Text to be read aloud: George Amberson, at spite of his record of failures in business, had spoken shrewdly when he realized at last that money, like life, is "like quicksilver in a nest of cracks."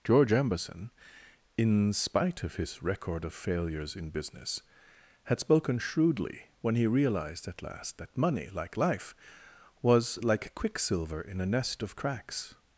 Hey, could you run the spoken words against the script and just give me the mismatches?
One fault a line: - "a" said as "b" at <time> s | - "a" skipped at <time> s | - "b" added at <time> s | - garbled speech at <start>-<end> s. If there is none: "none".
- "at" said as "in" at 1.6 s
- "is" said as "was" at 9.8 s